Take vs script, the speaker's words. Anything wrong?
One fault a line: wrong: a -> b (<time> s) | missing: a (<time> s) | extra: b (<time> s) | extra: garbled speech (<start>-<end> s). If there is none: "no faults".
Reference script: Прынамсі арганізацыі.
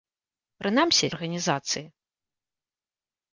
no faults